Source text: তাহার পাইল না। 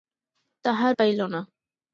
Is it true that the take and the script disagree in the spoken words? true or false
false